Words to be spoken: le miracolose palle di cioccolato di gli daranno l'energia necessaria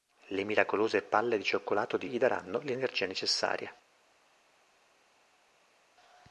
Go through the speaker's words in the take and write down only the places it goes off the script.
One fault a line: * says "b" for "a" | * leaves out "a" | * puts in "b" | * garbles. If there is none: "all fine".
all fine